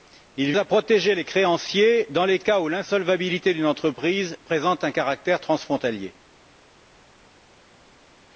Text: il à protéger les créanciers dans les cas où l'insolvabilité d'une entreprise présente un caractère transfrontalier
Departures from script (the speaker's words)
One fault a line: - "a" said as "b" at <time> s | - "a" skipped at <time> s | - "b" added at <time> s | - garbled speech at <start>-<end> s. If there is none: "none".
none